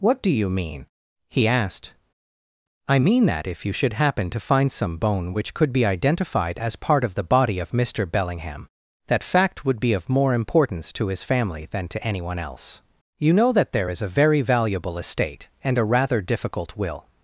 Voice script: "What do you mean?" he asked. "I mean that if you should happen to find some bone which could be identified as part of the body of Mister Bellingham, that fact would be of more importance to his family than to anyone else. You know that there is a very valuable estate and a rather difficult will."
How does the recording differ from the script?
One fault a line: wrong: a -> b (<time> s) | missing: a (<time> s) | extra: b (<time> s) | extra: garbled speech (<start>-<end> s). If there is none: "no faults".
no faults